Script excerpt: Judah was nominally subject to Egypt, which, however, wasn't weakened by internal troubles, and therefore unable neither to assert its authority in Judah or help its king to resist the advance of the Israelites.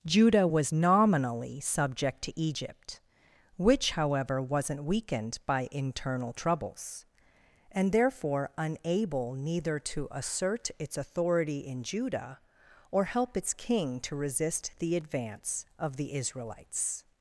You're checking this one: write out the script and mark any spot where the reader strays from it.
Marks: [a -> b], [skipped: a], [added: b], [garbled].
Judah was nominally subject to Egypt, which, however, wasn't weakened by internal troubles, and therefore unable neither to assert its authority in Judah or help its king to resist the advance of the Israelites.